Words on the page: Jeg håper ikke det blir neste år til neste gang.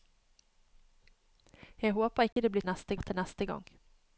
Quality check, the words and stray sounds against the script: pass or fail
fail